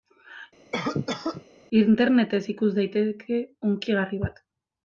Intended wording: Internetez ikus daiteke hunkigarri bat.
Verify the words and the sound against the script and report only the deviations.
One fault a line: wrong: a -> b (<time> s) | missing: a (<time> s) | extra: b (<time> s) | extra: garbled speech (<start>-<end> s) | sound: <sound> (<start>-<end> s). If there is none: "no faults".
sound: cough (0.7-1.4 s)